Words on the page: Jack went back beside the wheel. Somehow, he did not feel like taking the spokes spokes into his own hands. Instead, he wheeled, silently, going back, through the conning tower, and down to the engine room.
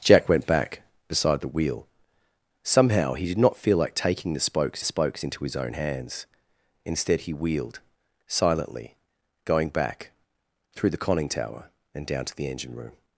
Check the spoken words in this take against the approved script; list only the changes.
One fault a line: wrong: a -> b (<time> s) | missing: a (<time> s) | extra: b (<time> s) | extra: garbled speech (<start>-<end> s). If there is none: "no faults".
no faults